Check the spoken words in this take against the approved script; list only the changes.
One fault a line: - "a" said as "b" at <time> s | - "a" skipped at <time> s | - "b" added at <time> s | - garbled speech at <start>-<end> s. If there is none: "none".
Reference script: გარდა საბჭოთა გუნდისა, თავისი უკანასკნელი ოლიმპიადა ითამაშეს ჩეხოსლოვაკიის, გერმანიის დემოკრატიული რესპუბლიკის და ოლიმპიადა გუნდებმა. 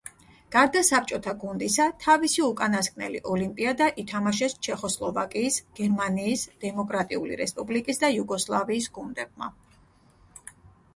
- "ოლიმპიადა" said as "იუგოსლავიის" at 8.2 s